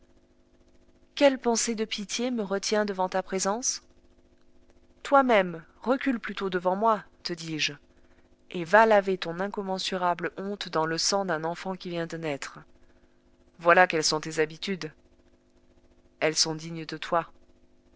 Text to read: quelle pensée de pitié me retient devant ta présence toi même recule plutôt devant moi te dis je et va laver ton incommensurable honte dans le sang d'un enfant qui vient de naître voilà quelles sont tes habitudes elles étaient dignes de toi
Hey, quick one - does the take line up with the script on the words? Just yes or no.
no